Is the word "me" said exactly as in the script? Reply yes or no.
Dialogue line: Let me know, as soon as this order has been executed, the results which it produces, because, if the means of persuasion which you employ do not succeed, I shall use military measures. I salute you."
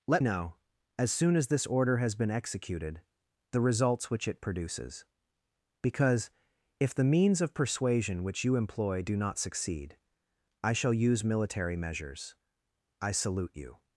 no